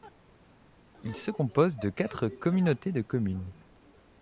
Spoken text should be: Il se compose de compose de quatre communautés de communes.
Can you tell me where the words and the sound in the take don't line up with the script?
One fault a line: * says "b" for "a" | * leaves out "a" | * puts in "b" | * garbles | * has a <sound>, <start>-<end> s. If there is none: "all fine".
* leaves out "compose de"